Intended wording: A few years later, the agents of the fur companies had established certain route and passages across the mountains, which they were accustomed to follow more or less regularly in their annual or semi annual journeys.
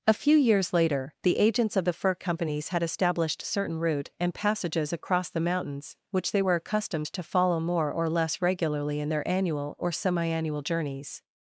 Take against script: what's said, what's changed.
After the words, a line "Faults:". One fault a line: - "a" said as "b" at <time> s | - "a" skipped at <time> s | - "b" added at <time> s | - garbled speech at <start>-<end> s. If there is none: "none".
A few years later, the agents of the fur companies had established certain route and passages across the mountains, which they were accustomed to follow more or less regularly in their annual or semi annual journeys.
Faults:
none